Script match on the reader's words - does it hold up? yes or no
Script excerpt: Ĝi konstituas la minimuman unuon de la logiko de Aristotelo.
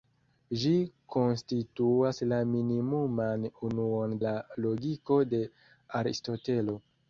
no